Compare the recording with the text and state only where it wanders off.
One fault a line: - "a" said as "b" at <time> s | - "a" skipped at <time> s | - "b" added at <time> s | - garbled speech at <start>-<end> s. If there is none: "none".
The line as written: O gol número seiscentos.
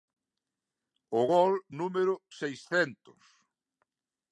none